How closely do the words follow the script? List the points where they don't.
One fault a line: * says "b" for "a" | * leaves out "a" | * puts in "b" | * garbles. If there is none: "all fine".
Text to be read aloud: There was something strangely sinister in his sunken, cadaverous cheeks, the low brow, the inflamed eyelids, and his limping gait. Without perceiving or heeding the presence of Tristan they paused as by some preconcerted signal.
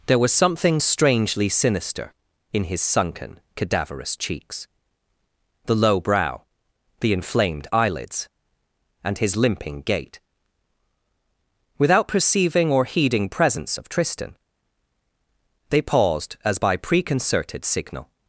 * leaves out "the"
* leaves out "some"